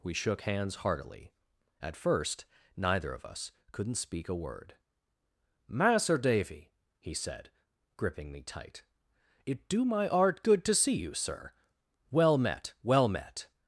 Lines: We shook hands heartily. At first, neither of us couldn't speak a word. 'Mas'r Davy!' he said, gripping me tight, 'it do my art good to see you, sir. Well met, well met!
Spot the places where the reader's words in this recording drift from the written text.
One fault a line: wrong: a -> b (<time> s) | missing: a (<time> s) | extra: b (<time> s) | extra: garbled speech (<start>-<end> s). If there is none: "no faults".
no faults